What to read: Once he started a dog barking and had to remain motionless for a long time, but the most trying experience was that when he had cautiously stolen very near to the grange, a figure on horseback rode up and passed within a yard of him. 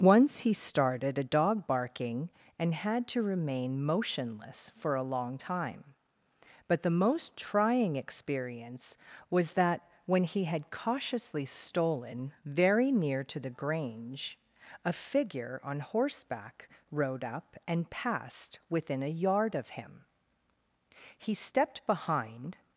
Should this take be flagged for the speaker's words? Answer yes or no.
yes